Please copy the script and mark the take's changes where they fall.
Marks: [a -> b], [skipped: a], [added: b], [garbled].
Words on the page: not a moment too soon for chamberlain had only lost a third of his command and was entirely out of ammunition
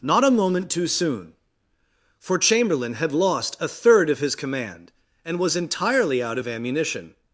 not a moment too soon for chamberlain had [skipped: only] lost a third of his command and was entirely out of ammunition